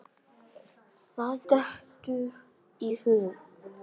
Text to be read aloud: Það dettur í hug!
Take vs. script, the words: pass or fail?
pass